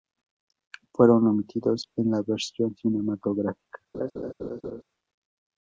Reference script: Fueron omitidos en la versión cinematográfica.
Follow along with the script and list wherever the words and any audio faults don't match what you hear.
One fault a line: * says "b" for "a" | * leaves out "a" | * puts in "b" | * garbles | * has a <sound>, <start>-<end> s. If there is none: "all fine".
* has a laugh, 3.9-4.8 s